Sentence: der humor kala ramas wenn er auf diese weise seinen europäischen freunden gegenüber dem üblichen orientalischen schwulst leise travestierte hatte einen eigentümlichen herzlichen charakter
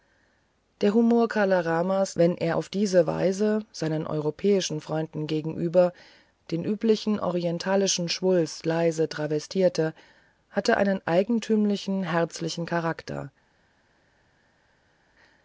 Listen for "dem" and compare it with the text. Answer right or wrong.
wrong